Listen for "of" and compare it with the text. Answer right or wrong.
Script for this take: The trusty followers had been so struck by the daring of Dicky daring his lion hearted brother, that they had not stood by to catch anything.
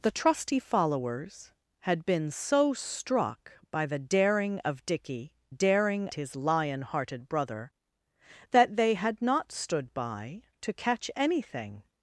right